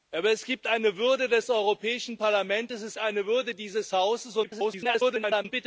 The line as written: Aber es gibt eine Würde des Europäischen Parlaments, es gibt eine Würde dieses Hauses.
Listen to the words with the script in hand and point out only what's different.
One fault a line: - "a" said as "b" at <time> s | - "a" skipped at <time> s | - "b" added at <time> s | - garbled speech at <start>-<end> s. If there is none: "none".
- "gibt" skipped at 3.0 s
- garbled speech at 4.4-5.5 s